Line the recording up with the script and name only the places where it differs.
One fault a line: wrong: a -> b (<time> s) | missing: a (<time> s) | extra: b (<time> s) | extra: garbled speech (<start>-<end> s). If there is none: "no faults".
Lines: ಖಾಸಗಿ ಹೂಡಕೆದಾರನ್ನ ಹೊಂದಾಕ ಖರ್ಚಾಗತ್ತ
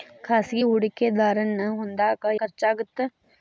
no faults